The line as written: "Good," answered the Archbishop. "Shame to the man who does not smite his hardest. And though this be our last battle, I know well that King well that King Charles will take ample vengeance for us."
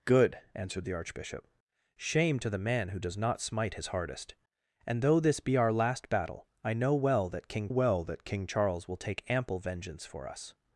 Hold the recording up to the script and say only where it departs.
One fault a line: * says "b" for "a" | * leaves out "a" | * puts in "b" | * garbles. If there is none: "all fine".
all fine